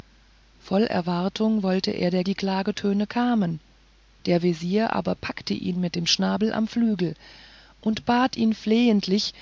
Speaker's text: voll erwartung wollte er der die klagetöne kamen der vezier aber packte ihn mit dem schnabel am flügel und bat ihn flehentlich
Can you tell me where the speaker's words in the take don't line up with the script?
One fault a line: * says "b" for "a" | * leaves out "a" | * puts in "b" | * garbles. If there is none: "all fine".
all fine